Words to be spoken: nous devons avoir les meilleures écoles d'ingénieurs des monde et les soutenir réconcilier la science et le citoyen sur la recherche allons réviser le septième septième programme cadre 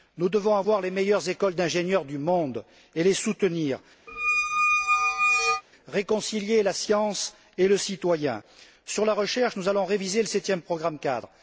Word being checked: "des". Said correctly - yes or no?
no